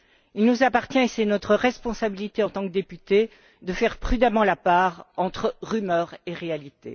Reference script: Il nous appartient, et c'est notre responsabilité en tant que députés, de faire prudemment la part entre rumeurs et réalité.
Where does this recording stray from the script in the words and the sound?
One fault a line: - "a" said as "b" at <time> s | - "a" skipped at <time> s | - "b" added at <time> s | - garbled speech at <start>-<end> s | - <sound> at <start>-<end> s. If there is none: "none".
none